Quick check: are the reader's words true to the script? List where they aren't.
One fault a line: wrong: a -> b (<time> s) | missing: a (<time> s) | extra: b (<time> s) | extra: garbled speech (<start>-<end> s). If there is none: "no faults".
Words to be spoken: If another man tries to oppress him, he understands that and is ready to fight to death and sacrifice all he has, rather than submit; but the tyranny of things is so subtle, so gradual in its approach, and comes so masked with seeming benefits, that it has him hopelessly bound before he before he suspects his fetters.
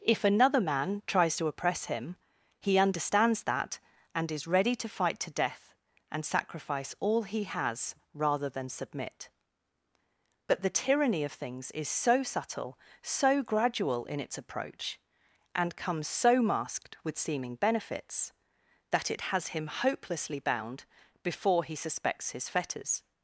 missing: before he (21.8 s)